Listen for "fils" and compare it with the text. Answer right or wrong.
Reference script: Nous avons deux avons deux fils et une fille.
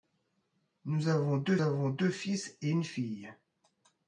right